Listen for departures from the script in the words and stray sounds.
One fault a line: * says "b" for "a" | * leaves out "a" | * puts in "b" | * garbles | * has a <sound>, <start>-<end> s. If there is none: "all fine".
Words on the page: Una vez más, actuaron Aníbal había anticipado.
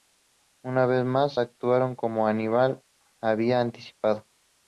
* puts in "como"